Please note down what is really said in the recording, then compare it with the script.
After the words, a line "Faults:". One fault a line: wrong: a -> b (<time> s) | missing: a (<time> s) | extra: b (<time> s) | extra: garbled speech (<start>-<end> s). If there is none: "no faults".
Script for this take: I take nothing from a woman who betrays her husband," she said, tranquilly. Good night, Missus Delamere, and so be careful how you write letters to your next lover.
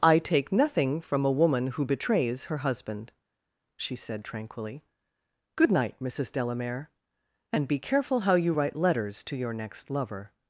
I take nothing from a woman who betrays her husband," she said, tranquilly. Good night, Missus Delamere, and be careful how you write letters to your next lover.
Faults:
missing: so (7.7 s)